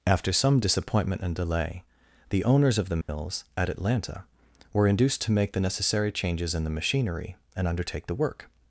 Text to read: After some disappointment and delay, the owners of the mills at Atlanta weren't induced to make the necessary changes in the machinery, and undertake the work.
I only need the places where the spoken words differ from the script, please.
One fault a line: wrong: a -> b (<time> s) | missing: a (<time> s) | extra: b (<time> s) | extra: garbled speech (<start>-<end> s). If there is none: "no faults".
wrong: weren't -> were (4.7 s)